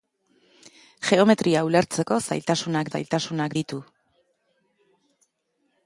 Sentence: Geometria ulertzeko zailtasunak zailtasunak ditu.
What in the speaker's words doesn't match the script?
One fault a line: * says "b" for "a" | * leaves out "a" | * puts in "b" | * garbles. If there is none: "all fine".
all fine